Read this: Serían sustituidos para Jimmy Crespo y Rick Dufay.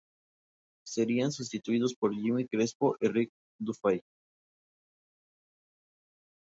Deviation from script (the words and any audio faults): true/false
true